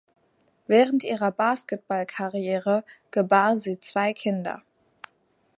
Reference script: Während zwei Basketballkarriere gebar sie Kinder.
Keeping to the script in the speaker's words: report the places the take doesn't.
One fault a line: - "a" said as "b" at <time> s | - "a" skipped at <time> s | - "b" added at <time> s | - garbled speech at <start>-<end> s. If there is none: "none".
- "zwei" said as "ihrer" at 1.0 s
- "zwei" added at 3.8 s